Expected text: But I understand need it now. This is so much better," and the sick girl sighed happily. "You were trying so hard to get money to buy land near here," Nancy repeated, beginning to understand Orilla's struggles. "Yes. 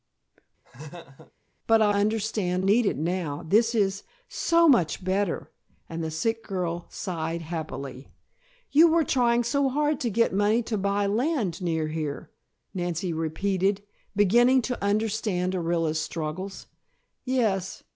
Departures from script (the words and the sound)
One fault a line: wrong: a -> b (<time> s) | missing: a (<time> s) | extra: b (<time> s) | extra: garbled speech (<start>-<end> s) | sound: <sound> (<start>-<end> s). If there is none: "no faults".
sound: laugh (0.6-1.3 s)